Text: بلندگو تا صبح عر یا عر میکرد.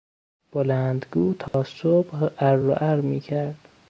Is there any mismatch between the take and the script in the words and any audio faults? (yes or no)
yes